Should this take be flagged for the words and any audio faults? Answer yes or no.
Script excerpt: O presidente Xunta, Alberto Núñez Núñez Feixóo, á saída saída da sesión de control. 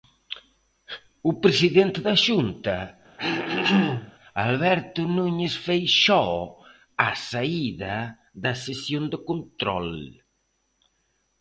yes